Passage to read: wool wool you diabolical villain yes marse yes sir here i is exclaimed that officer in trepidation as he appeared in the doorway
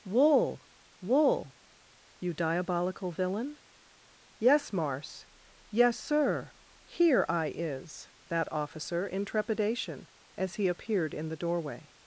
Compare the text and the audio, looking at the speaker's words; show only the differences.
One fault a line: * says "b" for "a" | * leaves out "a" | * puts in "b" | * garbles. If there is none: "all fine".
* leaves out "exclaimed"